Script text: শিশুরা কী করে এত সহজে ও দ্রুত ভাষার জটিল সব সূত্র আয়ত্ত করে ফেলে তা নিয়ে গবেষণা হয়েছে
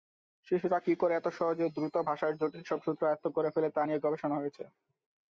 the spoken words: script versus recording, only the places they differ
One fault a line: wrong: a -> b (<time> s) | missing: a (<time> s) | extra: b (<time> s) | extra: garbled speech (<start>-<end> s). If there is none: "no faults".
no faults